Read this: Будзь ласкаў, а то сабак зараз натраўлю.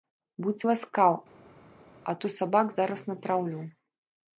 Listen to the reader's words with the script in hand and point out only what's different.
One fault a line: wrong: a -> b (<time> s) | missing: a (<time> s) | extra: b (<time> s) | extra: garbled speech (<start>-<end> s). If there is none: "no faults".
no faults